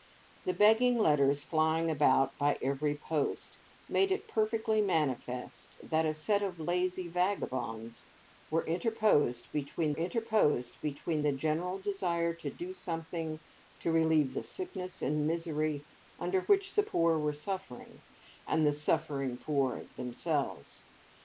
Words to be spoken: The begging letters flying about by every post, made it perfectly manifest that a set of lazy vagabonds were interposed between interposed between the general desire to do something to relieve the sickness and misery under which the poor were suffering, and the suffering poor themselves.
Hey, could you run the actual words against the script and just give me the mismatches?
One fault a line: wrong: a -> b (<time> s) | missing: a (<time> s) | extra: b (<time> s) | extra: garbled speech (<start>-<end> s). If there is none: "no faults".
no faults